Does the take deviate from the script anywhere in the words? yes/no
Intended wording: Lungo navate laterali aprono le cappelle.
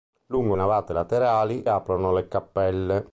no